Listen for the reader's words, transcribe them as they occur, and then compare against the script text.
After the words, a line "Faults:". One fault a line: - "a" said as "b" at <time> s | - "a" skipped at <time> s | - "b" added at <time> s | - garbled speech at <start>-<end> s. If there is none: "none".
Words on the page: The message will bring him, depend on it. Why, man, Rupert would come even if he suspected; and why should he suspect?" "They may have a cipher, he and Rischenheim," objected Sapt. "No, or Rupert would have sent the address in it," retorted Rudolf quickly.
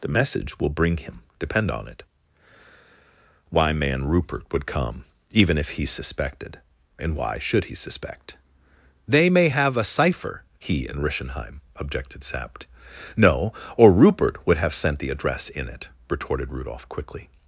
The message will bring him, depend on it. Why, man, Rupert would come even if he suspected; and why should he suspect?" "They may have a cipher, he and Rischenheim," objected Sapt. "No, or Rupert would have sent the address in it," retorted Rudolf quickly.
Faults:
none